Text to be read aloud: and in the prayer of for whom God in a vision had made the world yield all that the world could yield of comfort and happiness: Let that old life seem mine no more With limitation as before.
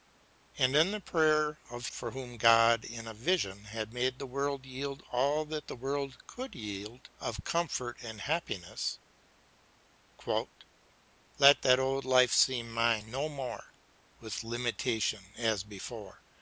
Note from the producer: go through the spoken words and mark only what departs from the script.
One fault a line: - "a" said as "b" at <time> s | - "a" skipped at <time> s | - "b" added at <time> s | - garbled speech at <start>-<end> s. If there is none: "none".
none